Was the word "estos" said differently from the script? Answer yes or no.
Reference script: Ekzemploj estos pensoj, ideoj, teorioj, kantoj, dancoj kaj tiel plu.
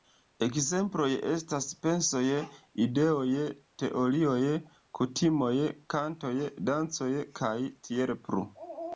yes